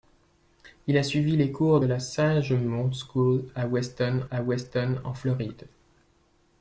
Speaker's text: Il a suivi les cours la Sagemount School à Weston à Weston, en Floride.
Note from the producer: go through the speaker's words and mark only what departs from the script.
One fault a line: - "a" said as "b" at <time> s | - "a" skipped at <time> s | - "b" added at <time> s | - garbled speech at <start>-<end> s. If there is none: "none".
none